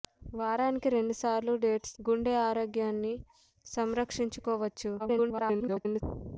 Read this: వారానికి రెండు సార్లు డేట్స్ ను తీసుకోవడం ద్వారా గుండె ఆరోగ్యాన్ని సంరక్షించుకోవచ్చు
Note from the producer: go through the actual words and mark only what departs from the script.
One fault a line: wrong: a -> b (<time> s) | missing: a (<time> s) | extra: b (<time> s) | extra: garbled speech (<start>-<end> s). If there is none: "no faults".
missing: ను తీసుకోవడం ద్వారా (1.9 s)
extra: garbled speech (5.0-6.0 s)